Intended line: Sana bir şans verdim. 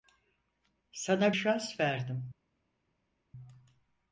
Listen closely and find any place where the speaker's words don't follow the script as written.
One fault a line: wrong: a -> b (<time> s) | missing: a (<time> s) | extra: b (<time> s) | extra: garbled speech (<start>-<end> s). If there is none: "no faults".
missing: bir (1.4 s)